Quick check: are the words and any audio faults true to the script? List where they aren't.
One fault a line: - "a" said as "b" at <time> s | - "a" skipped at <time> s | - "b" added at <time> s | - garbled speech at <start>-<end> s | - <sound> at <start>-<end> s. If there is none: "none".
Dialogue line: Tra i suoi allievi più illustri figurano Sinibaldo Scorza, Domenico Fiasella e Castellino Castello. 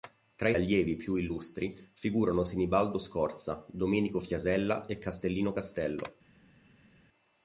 - "suoi" skipped at 0.6 s